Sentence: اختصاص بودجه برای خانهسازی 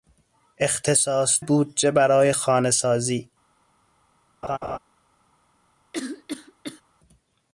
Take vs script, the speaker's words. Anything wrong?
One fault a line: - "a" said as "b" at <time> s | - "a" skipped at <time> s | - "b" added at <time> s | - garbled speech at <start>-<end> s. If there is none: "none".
none